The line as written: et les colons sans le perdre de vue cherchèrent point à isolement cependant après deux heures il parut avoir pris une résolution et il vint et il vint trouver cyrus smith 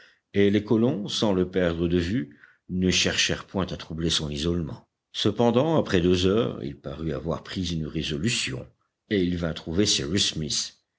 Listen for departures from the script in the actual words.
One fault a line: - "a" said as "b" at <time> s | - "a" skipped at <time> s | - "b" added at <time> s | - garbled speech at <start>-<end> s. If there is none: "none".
- "ne" added at 2.7 s
- "troubler son" added at 3.8 s
- "et il vint" skipped at 9.5 s